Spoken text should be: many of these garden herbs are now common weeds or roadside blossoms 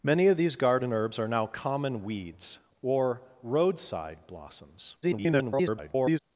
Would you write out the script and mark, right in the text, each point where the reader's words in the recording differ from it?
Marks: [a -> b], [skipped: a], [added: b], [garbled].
many of these garden herbs are now common weeds or roadside blossoms [garbled]